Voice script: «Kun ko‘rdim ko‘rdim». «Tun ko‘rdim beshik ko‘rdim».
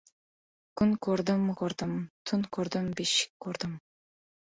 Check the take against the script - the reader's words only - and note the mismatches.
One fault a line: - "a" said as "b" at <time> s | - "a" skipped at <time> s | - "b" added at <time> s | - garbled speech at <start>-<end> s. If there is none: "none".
none